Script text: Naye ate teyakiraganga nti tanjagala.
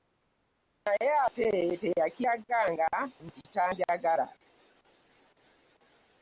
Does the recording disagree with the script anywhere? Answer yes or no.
no